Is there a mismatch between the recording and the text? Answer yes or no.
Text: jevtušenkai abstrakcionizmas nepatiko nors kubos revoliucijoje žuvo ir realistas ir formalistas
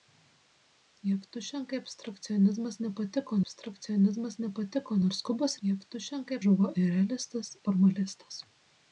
yes